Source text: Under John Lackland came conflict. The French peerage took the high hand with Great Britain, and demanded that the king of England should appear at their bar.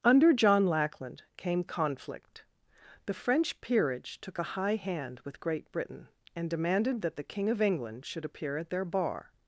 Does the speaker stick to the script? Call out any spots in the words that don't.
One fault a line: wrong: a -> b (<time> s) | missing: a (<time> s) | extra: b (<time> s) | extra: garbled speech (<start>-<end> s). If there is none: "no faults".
wrong: the -> a (4.4 s)